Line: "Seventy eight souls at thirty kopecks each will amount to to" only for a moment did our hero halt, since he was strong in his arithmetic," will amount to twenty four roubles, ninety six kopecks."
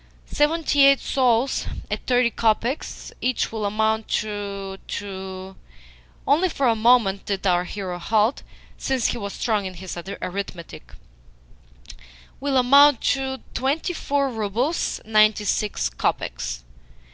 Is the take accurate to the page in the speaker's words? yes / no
yes